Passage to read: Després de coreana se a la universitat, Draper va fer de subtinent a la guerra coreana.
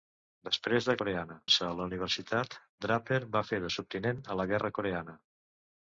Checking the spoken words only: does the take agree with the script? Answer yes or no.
yes